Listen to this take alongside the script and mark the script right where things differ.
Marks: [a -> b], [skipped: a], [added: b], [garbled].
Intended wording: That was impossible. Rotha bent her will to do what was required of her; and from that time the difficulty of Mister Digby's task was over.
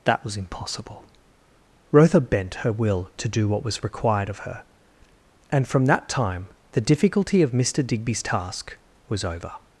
That was impossible. Rotha bent her will to do what was required of her; and from that time the difficulty of Mister Digby's task was over.